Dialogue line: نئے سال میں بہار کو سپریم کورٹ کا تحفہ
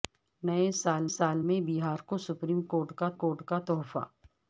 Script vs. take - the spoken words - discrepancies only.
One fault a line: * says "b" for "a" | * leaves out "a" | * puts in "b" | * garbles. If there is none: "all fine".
* puts in "سال"
* puts in "کورٹ کا"